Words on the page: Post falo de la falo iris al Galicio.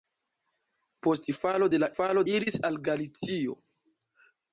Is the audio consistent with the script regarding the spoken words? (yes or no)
yes